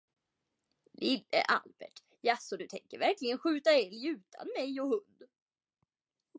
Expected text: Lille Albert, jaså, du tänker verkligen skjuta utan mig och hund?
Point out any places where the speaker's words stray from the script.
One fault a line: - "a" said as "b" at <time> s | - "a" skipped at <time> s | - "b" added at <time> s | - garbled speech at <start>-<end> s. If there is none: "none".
- "älg" added at 3.7 s